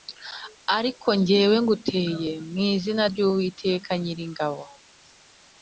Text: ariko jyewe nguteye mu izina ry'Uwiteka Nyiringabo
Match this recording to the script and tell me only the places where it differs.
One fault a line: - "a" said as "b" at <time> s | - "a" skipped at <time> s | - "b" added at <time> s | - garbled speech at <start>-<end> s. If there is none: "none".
none